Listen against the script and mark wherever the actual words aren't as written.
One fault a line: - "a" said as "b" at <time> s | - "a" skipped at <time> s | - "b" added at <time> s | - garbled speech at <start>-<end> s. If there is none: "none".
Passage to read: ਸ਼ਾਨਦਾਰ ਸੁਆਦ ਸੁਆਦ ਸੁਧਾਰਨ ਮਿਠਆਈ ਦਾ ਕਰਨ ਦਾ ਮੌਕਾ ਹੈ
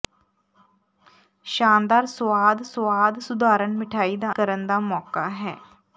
none